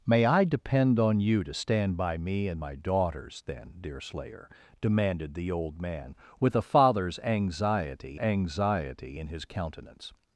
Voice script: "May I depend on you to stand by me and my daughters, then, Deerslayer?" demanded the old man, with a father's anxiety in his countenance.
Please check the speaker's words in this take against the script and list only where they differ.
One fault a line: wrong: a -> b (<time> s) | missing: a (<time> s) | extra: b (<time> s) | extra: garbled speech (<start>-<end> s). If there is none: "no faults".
extra: anxiety (8.1 s)